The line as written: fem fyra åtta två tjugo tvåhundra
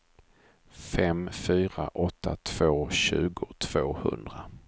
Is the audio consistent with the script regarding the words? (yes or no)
yes